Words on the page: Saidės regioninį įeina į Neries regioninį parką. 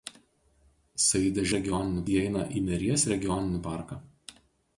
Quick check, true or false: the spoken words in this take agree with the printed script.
true